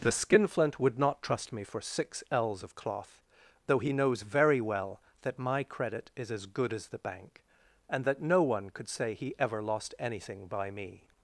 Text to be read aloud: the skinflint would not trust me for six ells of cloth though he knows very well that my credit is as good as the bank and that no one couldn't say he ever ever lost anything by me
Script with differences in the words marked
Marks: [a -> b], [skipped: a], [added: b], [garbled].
the skinflint would not trust me for six ells of cloth though he knows very well that my credit is as good as the bank and that no one [couldn't -> could] say he ever [skipped: ever] lost anything by me